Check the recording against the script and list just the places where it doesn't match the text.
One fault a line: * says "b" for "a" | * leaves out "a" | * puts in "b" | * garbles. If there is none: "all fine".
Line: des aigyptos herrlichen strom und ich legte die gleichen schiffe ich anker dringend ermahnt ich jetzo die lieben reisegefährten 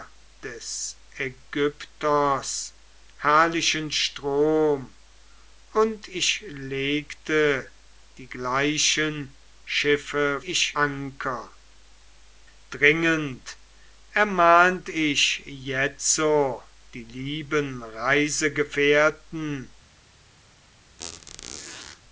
all fine